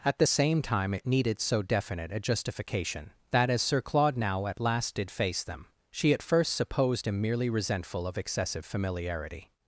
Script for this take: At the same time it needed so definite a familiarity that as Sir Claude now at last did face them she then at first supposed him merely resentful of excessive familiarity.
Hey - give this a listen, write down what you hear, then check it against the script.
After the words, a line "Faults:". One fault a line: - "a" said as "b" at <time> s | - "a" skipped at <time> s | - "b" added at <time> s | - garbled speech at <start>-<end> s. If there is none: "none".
At the same time it needed so definite a justification that as Sir Claude now at last did face them she at first supposed him merely resentful of excessive familiarity.
Faults:
- "familiarity" said as "justification" at 2.2 s
- "then" skipped at 6.1 s